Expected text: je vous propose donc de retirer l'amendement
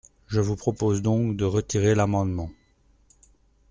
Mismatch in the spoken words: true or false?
false